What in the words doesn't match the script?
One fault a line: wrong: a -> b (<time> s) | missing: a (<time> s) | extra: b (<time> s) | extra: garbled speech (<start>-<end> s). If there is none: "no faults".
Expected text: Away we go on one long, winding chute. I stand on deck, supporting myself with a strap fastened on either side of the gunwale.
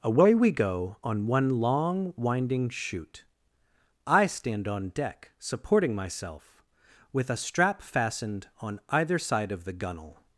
no faults